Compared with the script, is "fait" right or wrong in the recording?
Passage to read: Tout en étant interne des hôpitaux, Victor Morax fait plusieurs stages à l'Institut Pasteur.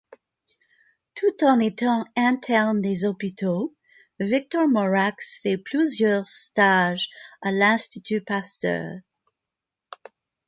right